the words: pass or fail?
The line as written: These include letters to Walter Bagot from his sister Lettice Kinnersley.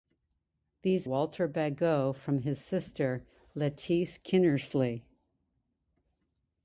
fail